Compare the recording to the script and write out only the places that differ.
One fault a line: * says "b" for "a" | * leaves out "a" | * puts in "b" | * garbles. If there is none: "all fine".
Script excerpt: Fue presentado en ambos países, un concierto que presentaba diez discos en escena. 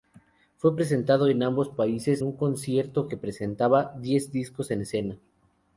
all fine